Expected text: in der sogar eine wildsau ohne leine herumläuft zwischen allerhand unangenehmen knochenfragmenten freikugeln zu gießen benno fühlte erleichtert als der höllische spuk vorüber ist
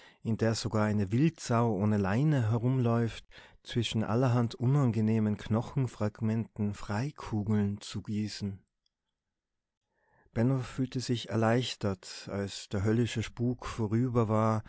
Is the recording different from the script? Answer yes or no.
yes